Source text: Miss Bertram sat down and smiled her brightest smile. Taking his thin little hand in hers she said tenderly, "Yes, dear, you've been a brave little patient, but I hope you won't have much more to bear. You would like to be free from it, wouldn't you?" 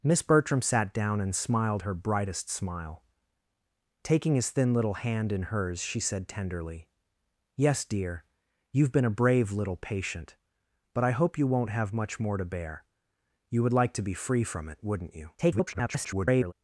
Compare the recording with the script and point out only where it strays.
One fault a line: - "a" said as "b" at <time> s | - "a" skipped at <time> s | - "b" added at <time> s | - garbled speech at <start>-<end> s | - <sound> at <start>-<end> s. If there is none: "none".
- garbled speech at 15.4-16.5 s